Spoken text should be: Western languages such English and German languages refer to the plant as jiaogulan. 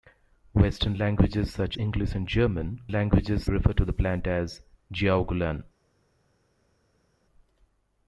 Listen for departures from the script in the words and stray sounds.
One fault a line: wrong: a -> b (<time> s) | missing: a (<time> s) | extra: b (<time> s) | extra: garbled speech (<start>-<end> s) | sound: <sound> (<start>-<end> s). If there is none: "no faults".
no faults